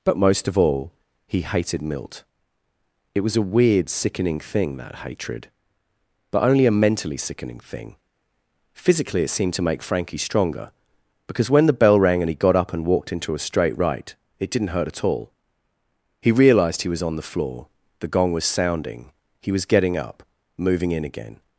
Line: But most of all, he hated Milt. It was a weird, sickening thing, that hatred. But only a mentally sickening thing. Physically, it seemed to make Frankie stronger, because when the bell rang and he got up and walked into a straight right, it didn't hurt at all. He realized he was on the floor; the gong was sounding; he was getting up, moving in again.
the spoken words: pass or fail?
pass